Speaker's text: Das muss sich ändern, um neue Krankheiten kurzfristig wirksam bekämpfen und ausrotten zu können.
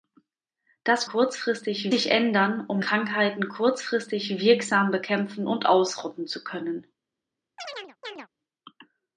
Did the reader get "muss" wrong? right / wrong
wrong